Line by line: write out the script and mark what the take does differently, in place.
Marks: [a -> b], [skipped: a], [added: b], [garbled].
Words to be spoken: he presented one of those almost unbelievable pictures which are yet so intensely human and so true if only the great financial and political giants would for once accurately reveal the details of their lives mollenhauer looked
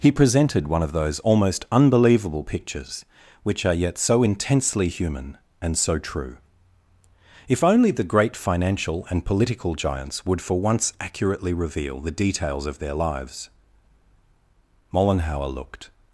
he presented one of those almost unbelievable pictures which are yet so intensely human and so true if only the great financial and political giants would for once accurately reveal the details of their lives mollenhauer looked